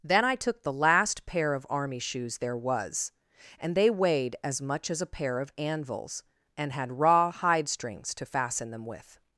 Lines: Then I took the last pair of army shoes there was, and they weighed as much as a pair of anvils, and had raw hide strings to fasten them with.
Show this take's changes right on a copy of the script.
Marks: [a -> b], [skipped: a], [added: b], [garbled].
Then I took the last pair of army shoes there was, and they weighed as much as a pair of anvils, and had raw hide strings to fasten them with.